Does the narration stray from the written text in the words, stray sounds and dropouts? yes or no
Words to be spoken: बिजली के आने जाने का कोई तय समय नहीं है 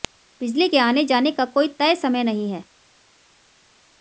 no